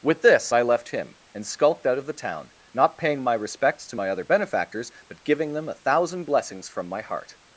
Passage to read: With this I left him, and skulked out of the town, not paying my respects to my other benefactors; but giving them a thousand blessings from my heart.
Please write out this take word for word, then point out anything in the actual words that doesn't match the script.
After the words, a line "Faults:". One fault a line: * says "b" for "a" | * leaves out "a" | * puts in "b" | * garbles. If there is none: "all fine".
With this I left him, and skulked out of the town, not paying my respects to my other benefactors; but giving them a thousand blessings from my heart.
Faults:
all fine